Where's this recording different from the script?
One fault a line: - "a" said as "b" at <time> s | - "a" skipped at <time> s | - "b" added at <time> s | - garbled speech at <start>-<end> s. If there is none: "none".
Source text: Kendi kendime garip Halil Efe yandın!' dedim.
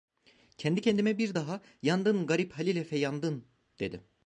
- "bir daha Yandın" added at 1.2 s